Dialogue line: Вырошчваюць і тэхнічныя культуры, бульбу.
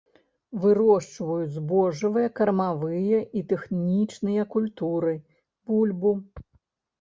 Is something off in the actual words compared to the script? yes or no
yes